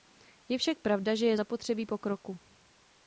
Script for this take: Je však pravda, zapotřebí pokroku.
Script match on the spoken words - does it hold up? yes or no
no